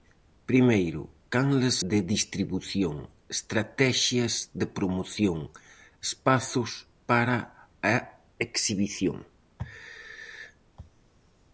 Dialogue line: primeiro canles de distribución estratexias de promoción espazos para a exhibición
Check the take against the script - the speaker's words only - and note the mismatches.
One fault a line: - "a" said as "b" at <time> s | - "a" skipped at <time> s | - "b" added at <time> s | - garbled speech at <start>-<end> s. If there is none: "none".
none